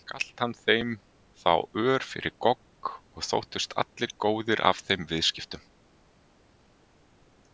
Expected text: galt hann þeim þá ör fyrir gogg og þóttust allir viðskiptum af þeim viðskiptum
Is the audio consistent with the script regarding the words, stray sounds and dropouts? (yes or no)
no